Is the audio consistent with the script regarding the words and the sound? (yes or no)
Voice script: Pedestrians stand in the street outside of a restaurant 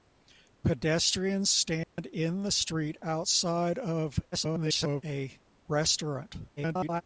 no